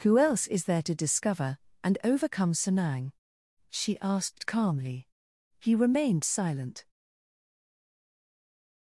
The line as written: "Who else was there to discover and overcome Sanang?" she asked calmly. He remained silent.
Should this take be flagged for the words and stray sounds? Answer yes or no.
yes